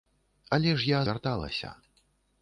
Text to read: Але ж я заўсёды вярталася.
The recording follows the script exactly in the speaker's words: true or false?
false